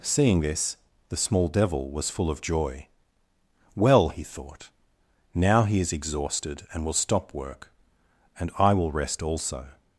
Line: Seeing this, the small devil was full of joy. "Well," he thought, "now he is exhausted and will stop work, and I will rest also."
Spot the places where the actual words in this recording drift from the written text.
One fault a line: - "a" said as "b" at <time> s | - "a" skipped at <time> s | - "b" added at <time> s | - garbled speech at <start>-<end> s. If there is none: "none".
none